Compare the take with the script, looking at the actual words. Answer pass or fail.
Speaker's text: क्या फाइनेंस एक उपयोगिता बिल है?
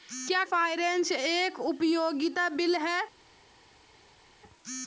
pass